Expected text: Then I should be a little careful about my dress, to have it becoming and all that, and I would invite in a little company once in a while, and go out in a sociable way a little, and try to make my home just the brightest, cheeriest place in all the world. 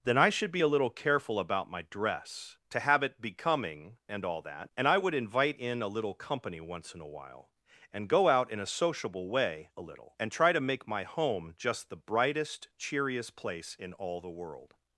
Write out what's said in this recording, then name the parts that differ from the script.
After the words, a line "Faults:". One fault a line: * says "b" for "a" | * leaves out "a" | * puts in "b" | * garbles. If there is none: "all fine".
Then I should be a little careful about my dress, to have it becoming and all that, and I would invite in a little company once in a while, and go out in a sociable way a little, and try to make my home just the brightest, cheeriest place in all the world.
Faults:
all fine